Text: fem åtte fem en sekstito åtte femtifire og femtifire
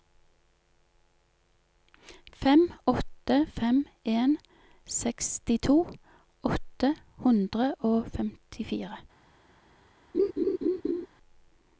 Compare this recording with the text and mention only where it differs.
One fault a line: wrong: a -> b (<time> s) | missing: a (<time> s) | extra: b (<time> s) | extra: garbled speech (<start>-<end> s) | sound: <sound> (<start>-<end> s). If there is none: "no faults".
wrong: femtifire -> hundre (7.3 s)
sound: laugh (10.1-11.1 s)